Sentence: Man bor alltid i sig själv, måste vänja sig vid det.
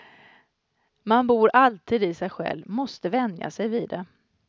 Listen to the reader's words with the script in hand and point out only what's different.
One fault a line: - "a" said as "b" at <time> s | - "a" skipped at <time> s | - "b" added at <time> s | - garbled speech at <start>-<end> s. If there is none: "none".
none